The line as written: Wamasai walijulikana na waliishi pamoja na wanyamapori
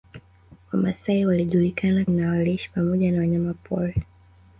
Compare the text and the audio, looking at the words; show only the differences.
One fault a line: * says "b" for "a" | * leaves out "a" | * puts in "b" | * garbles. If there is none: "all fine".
all fine